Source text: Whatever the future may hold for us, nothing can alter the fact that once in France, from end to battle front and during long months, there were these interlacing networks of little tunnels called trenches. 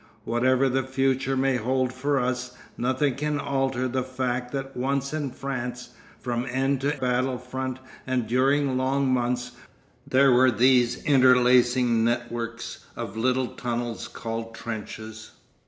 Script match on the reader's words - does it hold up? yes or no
yes